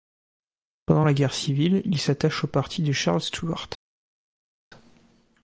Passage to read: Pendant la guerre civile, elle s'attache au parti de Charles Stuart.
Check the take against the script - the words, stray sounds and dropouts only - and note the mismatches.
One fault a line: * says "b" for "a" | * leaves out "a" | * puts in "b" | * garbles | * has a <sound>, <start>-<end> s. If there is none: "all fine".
* says "il" for "elle"